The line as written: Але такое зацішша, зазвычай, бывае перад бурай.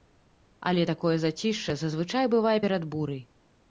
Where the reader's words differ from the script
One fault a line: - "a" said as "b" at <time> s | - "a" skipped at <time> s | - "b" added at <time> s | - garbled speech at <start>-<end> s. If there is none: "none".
none